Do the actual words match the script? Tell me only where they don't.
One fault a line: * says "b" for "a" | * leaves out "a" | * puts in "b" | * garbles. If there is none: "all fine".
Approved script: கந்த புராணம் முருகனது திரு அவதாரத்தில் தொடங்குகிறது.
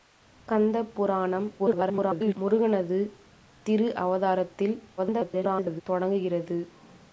* garbles
* garbles